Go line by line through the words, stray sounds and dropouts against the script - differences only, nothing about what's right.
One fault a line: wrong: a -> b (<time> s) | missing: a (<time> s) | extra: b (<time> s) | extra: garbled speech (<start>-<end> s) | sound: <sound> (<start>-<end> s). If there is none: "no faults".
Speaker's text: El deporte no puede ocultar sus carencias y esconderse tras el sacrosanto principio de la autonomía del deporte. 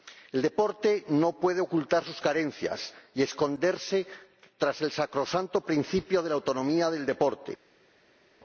no faults